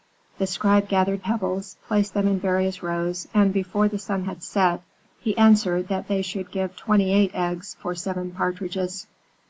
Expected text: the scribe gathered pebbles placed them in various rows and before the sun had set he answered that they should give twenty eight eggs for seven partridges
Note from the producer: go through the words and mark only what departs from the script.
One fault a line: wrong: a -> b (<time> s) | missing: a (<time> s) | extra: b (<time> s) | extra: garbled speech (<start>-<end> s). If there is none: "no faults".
no faults